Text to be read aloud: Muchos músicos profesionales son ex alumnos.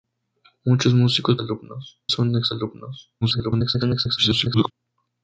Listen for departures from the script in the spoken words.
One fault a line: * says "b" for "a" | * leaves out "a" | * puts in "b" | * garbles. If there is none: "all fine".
* says "alumnos" for "profesionales"
* garbles